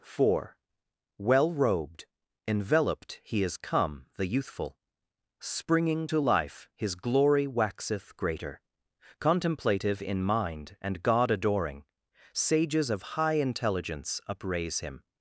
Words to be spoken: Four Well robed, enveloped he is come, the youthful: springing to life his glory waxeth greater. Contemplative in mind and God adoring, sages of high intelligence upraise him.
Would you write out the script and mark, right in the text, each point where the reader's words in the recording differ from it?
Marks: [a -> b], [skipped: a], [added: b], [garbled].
Four Well robed, enveloped he is come, the youthful: springing to life his glory waxeth greater. Contemplative in mind and God adoring, sages of high intelligence upraise him.